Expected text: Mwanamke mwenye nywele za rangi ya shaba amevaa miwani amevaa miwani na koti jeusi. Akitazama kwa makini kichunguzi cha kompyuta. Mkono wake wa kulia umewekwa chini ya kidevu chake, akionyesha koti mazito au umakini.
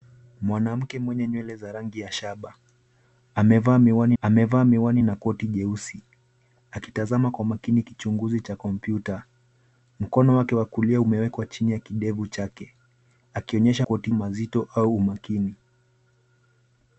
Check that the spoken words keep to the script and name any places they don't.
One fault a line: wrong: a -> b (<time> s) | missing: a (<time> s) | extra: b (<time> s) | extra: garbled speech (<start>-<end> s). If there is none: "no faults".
no faults